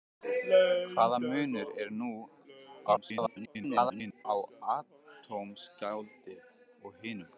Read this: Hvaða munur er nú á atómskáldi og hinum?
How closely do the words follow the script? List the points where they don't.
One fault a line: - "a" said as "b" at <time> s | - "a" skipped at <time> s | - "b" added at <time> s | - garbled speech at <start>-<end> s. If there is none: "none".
- garbled speech at 2.9-4.3 s